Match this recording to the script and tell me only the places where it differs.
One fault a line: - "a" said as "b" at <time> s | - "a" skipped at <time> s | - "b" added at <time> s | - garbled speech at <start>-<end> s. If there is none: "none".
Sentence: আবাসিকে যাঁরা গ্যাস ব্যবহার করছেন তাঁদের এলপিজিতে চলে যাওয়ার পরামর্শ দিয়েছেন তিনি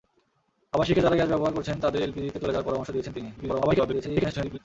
- garbled speech at 3.4-4.6 s